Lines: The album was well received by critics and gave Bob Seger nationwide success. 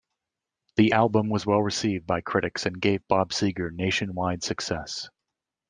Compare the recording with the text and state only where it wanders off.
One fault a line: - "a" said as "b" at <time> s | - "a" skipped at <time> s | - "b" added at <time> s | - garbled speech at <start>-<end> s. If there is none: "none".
none